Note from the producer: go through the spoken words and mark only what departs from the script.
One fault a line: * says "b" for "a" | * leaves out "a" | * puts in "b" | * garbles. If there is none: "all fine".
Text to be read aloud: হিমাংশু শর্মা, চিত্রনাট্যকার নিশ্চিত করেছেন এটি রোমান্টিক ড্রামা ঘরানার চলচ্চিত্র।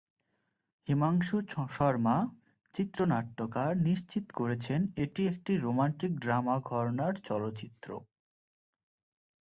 * puts in "একটি"